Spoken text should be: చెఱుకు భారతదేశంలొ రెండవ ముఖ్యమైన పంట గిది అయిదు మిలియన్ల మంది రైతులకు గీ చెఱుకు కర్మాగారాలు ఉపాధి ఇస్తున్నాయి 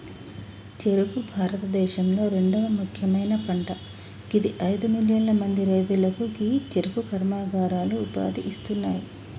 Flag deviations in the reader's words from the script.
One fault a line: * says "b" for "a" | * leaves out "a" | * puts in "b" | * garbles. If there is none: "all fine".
all fine